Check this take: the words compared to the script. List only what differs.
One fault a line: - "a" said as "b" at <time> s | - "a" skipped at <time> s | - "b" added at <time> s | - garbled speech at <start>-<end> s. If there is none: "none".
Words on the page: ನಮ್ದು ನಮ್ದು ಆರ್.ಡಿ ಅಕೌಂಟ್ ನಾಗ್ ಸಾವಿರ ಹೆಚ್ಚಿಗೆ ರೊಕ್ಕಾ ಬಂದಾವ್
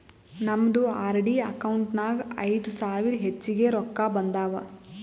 - "ನಮ್ದು" skipped at 0.8 s
- "ಐಯ್ದ" added at 2.5 s